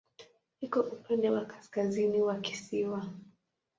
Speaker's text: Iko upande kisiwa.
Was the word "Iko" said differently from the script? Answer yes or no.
no